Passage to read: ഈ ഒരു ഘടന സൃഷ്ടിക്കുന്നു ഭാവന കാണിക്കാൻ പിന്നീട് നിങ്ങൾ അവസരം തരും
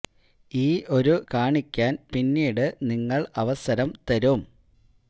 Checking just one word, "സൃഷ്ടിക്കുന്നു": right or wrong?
wrong